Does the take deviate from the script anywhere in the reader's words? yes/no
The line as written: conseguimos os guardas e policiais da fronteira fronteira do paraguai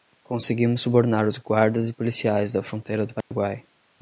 yes